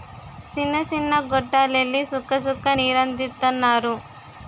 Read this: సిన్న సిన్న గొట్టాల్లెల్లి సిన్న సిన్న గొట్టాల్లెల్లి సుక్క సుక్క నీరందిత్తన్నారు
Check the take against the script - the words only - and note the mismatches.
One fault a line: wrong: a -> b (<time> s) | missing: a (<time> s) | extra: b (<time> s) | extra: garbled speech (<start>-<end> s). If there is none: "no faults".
missing: సిన్న సిన్న గొట్టాల్లెల్లి (2.0 s)